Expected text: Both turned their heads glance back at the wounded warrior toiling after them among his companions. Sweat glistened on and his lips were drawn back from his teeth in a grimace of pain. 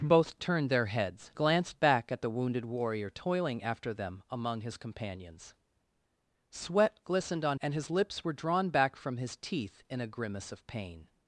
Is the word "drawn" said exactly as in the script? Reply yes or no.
yes